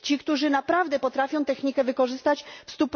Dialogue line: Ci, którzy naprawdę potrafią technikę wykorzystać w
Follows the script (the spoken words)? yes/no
yes